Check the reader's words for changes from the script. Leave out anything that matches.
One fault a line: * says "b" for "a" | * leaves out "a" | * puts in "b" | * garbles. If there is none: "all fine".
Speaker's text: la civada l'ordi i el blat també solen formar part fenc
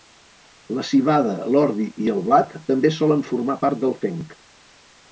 * puts in "del"